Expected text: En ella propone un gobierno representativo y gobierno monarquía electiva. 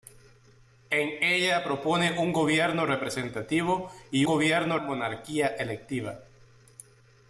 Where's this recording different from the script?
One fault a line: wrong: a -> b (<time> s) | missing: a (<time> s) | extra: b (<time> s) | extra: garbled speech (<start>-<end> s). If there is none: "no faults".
no faults